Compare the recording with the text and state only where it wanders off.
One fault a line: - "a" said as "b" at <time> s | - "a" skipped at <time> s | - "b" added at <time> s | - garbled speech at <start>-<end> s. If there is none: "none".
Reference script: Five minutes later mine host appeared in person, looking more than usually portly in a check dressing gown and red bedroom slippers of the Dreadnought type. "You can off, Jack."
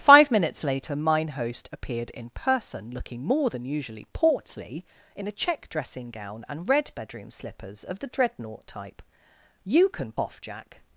none